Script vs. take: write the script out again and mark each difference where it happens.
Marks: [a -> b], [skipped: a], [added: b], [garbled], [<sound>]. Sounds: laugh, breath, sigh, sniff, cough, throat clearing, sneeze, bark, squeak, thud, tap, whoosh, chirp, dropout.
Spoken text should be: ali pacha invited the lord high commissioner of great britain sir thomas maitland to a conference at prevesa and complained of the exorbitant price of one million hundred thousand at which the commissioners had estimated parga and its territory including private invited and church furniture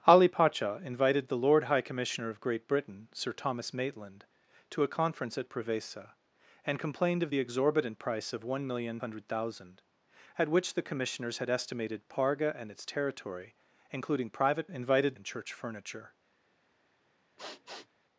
ali pacha invited the lord high commissioner of great britain sir thomas maitland to a conference at prevesa and complained of the exorbitant price of one million hundred thousand at which the commissioners had estimated parga and its territory including private invited and church furniture [sniff]